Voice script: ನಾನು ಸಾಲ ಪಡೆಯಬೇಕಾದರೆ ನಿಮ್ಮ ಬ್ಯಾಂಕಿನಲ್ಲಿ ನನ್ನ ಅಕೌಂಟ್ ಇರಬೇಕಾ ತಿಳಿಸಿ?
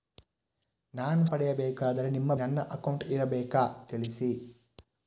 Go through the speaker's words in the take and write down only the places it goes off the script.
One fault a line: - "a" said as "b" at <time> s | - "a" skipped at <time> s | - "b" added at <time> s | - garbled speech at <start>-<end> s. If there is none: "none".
- "ಸಾಲ" skipped at 1.2 s
- "ಬ್ಯಾಂಕಿನಲ್ಲಿ" skipped at 2.3 s